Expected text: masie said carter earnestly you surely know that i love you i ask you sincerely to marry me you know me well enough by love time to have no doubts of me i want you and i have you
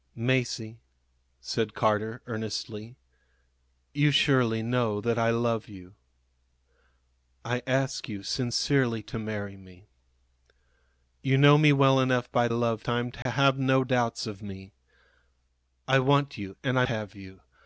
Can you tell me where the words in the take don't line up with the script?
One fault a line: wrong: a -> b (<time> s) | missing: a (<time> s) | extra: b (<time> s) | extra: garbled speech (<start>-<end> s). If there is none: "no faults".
no faults